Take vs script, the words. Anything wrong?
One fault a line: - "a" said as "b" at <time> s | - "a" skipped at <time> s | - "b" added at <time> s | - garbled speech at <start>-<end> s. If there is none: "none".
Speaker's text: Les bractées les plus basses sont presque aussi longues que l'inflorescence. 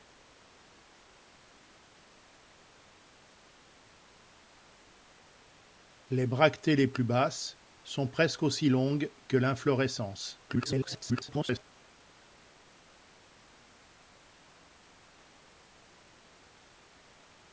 - garbled speech at 10.5-11.6 s